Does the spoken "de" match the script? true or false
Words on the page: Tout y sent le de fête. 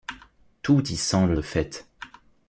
true